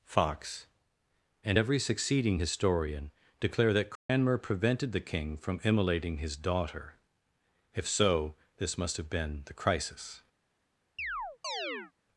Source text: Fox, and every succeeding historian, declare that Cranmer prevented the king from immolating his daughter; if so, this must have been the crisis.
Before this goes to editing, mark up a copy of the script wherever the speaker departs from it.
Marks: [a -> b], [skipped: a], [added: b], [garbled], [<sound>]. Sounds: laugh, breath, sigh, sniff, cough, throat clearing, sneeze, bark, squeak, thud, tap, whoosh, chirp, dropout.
Fox, and every succeeding historian, declare that Cranmer [dropout] prevented the king from immolating his daughter; if so, this must have been the crisis. [chirp]